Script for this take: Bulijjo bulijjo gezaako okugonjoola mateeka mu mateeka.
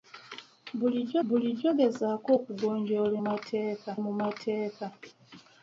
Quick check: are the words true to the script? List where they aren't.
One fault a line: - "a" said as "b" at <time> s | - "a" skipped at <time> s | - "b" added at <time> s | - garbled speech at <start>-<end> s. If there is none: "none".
none